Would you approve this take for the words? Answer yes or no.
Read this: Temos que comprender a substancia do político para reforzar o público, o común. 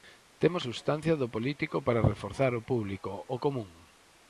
no